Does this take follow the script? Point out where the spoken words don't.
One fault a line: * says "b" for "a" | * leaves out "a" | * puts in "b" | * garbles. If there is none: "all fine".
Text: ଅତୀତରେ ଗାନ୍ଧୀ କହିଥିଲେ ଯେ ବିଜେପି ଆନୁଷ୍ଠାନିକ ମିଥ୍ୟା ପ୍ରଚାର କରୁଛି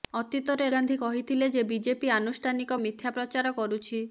all fine